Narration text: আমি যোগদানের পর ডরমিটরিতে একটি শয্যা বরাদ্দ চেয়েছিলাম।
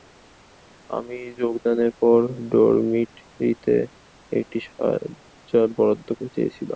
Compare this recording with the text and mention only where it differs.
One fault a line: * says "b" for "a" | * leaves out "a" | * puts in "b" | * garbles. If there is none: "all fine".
all fine